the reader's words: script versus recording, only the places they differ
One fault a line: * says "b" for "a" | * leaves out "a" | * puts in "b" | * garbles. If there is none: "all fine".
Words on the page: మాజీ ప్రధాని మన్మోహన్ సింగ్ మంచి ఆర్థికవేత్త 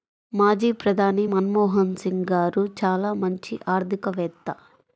* puts in "గారు చాలా"